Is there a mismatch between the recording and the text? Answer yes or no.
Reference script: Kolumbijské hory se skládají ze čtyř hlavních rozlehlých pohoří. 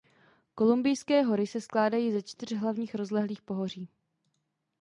no